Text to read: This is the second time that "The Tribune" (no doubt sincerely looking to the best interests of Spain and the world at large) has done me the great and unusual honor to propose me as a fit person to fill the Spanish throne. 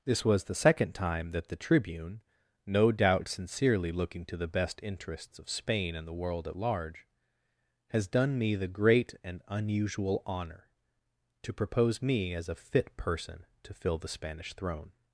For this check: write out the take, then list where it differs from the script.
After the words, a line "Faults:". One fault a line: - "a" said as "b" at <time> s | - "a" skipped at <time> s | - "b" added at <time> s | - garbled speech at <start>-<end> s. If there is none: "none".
This was the second time that "The Tribune" (no doubt sincerely looking to the best interests of Spain and the world at large) has done me the great and unusual honor to propose me as a fit person to fill the Spanish throne.
Faults:
- "is" said as "was" at 0.2 s